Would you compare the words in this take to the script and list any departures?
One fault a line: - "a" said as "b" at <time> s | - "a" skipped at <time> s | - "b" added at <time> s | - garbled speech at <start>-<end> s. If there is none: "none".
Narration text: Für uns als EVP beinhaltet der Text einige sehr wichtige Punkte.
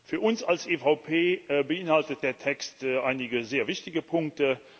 none